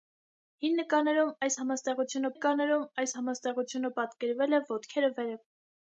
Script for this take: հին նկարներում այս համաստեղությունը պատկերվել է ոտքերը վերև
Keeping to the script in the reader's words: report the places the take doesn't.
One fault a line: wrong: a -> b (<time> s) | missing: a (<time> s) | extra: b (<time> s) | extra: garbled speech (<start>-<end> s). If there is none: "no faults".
extra: նկարներում այս համաստեղությունը (2.3 s)